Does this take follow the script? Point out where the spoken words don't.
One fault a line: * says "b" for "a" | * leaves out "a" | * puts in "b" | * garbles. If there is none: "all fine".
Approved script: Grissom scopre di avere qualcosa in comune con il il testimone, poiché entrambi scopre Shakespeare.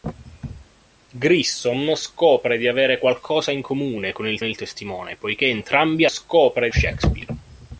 all fine